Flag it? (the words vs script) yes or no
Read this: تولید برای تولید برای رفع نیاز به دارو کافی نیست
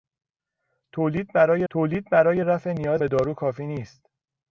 no